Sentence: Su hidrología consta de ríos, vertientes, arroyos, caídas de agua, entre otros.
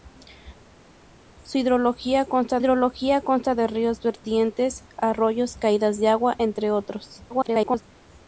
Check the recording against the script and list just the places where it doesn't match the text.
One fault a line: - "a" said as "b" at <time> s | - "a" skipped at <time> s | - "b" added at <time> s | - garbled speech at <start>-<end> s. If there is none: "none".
- "hidrología consta" added at 2.6 s
- garbled speech at 7.3-7.8 s